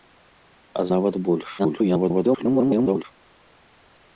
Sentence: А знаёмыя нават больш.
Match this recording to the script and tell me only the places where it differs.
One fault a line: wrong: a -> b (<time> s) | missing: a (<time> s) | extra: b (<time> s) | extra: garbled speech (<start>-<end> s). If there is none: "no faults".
missing: знаёмыя (0.8 s)
extra: garbled speech (1.6-3.0 s)